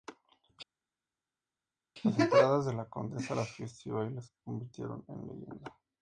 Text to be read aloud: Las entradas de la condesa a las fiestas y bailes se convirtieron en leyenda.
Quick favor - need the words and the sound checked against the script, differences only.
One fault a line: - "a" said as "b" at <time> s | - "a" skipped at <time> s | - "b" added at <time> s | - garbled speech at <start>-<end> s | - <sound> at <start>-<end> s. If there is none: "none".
none